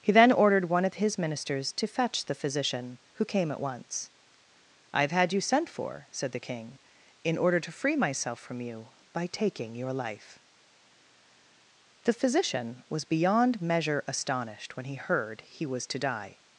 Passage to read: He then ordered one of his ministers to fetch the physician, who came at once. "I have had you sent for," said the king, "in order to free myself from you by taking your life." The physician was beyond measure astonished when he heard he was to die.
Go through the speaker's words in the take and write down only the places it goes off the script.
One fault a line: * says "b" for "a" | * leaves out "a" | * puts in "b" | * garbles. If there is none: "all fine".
all fine